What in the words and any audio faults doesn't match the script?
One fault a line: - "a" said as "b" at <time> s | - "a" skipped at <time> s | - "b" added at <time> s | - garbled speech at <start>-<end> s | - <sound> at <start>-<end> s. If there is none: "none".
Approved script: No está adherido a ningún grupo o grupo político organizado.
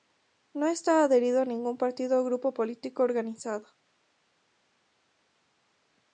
- "grupo" said as "partido" at 1.8 s